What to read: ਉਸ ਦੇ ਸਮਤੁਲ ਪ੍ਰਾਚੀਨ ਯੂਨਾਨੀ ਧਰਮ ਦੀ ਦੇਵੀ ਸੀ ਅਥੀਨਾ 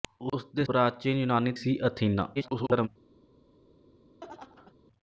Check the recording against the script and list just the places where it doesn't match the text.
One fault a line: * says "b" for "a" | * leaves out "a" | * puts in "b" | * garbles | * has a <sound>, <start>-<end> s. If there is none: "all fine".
* leaves out "ਸਮਤੁਲ"
* leaves out "ਧਰਮ ਦੀ ਦੇਵੀ"
* garbles
* has a laugh, 4.2-4.7 s